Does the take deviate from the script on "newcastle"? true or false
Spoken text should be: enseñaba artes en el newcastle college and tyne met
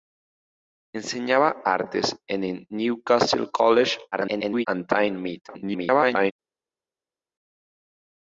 false